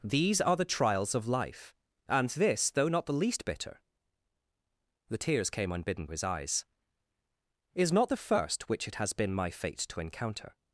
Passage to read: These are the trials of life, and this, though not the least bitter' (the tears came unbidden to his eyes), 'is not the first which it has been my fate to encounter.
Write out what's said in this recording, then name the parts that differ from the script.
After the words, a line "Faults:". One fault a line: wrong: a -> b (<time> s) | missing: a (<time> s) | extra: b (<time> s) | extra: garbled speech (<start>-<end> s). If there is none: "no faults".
These are the trials of life, and this, though not the least bitter' (the tears came unbidden his eyes), 'is not the first which it has been my fate to encounter.
Faults:
missing: to (6.1 s)